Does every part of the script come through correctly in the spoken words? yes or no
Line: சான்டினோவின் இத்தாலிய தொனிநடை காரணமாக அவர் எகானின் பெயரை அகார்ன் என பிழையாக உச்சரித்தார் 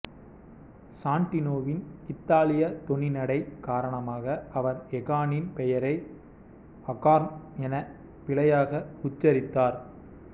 yes